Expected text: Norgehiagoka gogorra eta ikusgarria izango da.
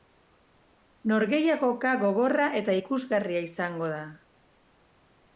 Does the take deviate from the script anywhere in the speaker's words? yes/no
no